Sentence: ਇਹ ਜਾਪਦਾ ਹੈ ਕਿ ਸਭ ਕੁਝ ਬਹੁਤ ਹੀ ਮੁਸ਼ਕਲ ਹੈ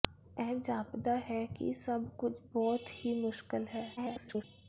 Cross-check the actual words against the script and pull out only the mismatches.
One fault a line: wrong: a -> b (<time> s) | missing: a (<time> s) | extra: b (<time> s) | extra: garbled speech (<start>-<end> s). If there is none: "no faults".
extra: garbled speech (4.0-4.4 s)